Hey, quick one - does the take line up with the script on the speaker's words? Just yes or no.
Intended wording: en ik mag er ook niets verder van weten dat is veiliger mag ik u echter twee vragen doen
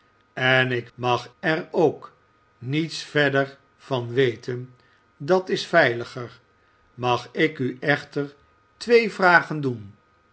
yes